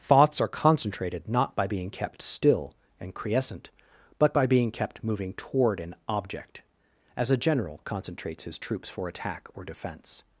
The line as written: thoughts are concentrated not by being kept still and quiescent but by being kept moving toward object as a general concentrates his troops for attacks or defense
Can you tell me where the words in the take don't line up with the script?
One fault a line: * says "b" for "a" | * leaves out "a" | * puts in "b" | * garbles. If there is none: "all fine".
* puts in "an"
* says "attack" for "attacks"